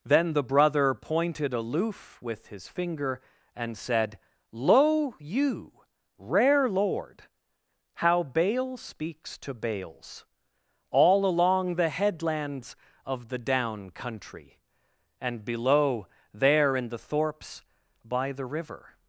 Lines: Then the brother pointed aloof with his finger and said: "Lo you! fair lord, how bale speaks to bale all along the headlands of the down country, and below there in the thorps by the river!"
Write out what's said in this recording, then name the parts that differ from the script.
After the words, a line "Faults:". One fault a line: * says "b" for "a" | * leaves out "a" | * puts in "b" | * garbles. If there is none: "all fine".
Then the brother pointed aloof with his finger and said: "Lo you! rare lord, how bale speaks to bales all along the headlands of the down country, and below there in the thorps by the river!"
Faults:
* says "rare" for "fair"
* says "bales" for "bale"